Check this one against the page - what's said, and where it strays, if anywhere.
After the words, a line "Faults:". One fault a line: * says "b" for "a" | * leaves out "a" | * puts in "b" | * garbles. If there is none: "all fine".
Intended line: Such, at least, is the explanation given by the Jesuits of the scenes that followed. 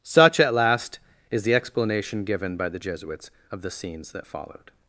Such, at last, is the explanation given by the Jesuits of the scenes that followed.
Faults:
* says "last" for "least"